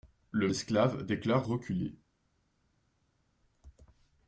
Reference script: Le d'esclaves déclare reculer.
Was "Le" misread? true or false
false